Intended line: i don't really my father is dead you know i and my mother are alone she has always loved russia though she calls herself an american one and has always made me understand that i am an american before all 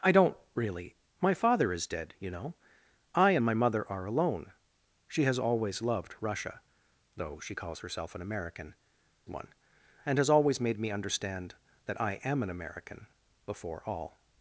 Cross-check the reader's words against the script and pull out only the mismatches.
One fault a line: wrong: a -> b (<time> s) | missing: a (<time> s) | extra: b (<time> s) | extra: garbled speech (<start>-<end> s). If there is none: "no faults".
no faults